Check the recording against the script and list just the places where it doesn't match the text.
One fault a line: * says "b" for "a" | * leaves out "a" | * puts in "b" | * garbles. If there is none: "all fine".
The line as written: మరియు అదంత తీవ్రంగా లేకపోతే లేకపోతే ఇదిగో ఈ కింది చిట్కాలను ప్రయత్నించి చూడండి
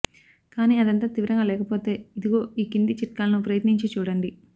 * says "కానీ" for "మరియు"
* leaves out "లేకపోతే"